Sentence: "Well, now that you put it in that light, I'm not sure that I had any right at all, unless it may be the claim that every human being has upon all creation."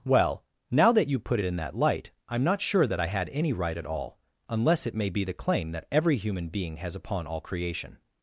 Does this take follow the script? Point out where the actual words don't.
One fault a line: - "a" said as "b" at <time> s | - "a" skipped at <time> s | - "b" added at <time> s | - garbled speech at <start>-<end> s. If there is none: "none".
none